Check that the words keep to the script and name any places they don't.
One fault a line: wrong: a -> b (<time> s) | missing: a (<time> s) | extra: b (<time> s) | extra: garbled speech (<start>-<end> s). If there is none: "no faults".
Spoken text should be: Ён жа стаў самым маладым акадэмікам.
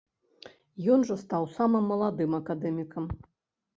no faults